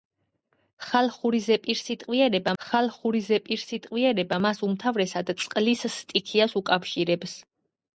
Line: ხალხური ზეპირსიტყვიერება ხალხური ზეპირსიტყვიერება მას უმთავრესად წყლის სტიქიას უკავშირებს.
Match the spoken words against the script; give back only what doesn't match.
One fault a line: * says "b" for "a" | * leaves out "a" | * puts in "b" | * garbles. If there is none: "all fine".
all fine